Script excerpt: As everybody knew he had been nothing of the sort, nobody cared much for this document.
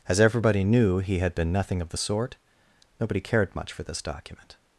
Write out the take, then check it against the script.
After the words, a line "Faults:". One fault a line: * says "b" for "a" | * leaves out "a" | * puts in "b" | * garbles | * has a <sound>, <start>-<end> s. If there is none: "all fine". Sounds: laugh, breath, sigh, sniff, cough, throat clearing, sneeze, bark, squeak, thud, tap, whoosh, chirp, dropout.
As everybody knew he had been nothing of the sort, nobody cared much for this document.
Faults:
all fine